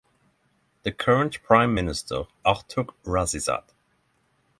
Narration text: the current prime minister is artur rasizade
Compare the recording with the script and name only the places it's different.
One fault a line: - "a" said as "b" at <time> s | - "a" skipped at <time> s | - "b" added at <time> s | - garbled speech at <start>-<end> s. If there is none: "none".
- "is" skipped at 2.3 s